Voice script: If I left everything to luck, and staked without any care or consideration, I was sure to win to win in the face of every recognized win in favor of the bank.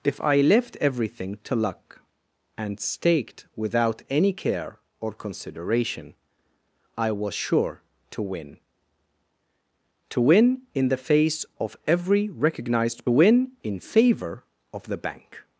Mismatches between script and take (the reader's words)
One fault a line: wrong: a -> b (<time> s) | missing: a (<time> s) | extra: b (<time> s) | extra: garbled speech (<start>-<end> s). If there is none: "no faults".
no faults